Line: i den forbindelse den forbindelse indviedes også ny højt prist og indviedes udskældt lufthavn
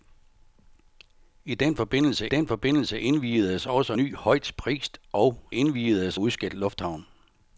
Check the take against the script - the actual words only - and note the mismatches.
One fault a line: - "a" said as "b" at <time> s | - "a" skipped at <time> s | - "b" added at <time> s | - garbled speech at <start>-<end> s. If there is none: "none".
none